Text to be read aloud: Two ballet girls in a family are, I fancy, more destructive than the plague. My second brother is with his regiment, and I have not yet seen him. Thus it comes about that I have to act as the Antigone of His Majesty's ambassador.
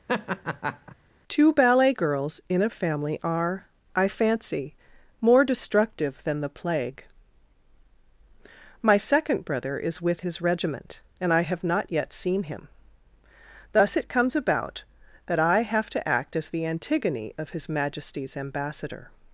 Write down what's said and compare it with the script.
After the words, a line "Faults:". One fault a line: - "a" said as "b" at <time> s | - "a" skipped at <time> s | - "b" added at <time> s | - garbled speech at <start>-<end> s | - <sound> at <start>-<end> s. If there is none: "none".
Two ballet girls in a family are, I fancy, more destructive than the plague. My second brother is with his regiment, and I have not yet seen him. Thus it comes about that I have to act as the Antigone of His Majesty's ambassador.
Faults:
- laugh at 0.1-1.0 s